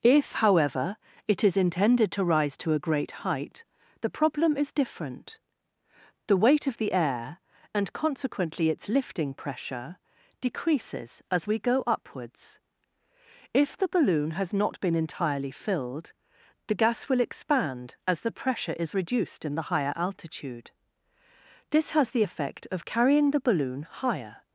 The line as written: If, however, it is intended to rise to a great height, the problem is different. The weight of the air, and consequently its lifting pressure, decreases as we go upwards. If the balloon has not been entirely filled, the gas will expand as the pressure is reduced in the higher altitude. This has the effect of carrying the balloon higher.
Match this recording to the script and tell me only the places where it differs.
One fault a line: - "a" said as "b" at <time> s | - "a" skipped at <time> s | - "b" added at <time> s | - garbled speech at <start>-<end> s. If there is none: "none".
none